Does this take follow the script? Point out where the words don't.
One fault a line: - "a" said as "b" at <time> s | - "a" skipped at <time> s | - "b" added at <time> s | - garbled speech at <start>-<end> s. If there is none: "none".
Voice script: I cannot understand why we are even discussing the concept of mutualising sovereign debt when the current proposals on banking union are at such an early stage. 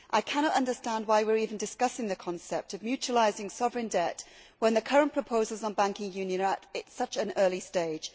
none